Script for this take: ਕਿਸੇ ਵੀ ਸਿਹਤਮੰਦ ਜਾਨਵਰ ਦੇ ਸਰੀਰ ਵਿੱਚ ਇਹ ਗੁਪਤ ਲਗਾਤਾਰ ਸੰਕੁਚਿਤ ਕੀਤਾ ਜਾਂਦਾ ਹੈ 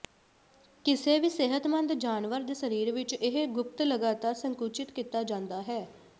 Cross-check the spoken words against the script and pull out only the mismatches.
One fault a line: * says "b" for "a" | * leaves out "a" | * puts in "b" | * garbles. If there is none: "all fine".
all fine